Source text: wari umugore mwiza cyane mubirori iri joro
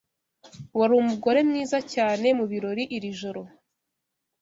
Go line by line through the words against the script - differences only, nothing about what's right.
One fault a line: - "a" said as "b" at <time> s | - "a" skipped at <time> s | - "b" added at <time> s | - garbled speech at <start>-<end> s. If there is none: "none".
none